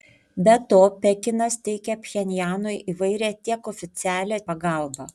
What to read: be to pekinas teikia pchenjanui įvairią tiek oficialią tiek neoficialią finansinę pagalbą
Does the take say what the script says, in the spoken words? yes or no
no